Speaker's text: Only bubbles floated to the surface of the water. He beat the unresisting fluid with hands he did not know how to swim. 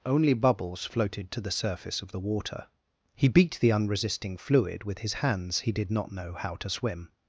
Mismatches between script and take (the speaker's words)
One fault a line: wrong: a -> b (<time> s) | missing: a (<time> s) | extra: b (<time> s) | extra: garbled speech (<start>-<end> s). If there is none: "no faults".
extra: his (5.0 s)